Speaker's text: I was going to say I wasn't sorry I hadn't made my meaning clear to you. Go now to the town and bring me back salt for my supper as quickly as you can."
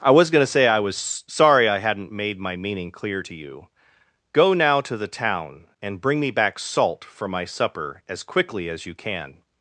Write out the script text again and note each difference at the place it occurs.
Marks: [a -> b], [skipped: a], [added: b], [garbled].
I was going to say I [wasn't -> was] sorry I hadn't made my meaning clear to you. Go now to the town and bring me back salt for my supper as quickly as you can."